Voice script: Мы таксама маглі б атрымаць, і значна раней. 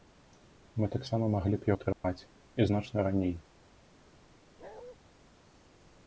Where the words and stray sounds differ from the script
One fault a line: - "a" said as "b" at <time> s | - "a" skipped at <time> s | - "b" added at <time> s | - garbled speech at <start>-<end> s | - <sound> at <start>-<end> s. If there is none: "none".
- dropout at 1.9-2.0 s
- bark at 4.6-5.0 s